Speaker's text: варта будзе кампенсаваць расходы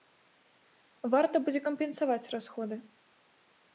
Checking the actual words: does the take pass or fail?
pass